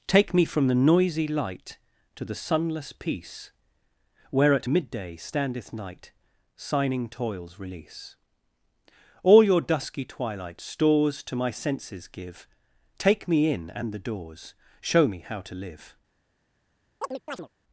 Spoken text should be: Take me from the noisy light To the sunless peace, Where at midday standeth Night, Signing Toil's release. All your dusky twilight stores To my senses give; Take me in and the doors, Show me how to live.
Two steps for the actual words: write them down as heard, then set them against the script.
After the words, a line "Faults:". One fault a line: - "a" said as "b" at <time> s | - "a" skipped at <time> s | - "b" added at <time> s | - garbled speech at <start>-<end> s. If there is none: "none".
Take me from the noisy light To the sunless peace, Where at midday standeth Night, Signing Toil's release. All your dusky twilight stores To my senses give; Take me in and the doors, Show me how to live.
Faults:
none